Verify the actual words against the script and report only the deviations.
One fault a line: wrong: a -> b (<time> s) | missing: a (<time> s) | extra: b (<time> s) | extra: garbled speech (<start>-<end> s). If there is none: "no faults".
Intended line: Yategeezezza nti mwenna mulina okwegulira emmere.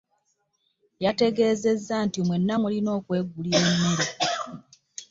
no faults